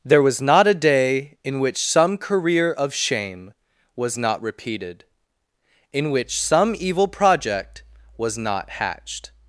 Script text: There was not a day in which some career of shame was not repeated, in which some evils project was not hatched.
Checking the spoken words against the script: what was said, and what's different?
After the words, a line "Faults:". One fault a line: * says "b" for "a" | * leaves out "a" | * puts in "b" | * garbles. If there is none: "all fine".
There was not a day in which some career of shame was not repeated, in which some evil project was not hatched.
Faults:
* says "evil" for "evils"